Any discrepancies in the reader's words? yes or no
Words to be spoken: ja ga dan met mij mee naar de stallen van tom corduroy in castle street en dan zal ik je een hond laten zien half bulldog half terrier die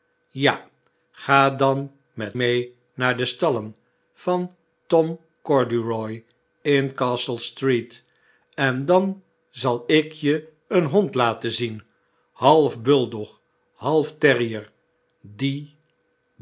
yes